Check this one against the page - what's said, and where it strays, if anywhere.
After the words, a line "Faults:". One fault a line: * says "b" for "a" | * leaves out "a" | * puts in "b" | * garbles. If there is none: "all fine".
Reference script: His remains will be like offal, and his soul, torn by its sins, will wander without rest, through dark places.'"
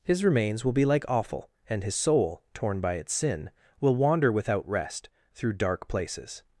His remains will be like offal, and his soul, torn by its sin, will wander without rest, through dark places.'"
Faults:
* says "sin" for "sins"